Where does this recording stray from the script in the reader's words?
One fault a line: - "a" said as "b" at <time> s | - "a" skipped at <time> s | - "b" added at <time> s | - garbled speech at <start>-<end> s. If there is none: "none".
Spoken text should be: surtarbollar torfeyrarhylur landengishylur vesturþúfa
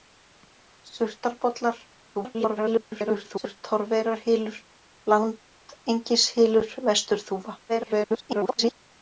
- garbled speech at 2.1-3.6 s
- garbled speech at 7.7-8.7 s